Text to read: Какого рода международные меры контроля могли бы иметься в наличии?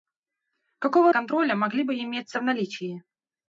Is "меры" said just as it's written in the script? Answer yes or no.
no